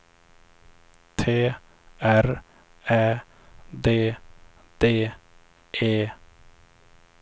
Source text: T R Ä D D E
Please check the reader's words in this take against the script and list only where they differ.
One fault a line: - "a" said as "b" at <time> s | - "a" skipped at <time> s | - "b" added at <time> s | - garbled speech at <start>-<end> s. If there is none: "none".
none